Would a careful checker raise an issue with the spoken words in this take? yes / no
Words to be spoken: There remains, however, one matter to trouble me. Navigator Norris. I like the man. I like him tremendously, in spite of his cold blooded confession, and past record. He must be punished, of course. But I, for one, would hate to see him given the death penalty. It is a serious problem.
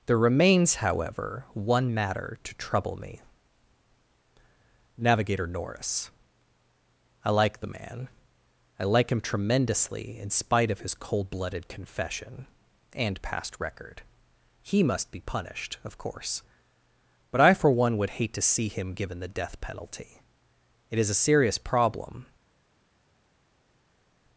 no